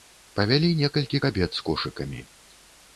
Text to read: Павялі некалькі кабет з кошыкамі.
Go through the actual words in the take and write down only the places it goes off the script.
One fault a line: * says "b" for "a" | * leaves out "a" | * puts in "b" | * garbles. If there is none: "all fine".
all fine